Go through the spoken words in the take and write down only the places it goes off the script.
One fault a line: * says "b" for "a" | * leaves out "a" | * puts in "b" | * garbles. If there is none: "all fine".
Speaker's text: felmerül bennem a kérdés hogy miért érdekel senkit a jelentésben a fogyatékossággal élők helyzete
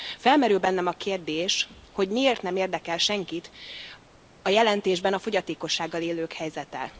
* puts in "nem"